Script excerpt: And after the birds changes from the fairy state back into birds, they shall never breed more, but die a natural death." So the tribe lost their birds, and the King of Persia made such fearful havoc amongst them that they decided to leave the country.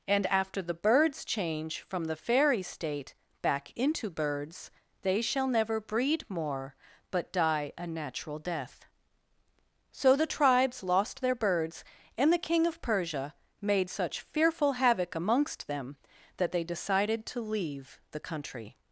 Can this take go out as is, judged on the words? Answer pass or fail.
fail